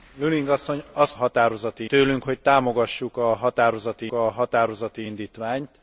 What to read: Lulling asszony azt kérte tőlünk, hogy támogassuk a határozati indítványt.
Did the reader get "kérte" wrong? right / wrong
wrong